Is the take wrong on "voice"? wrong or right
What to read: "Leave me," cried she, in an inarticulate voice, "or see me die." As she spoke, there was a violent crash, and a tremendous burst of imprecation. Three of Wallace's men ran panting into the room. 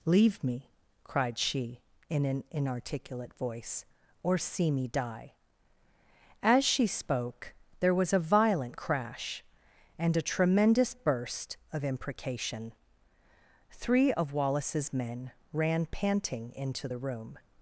right